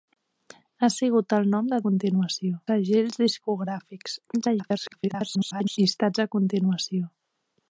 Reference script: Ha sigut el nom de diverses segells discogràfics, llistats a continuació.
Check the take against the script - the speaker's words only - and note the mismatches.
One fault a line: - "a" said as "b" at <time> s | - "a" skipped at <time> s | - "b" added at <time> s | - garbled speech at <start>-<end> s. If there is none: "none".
- "diverses" said as "continuació" at 1.9 s
- garbled speech at 4.4-5.8 s